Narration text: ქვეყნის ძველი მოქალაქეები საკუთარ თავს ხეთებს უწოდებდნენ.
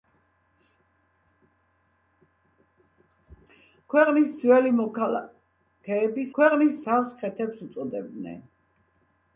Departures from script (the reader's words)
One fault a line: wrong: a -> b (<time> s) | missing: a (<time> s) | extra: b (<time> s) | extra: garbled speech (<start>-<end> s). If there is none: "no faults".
wrong: საკუთარ -> ქვეყნის (6.4 s)